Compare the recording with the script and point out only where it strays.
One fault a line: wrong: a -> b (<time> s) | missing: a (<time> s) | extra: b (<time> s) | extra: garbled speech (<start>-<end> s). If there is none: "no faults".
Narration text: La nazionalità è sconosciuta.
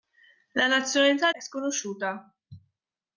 no faults